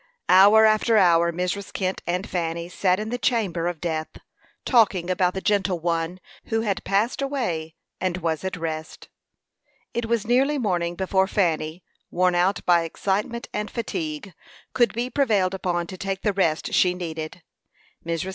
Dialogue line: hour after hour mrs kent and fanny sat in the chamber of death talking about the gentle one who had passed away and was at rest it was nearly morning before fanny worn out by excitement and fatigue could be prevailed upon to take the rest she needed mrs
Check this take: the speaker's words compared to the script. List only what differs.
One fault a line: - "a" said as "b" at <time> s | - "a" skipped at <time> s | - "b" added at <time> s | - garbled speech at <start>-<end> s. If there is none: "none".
none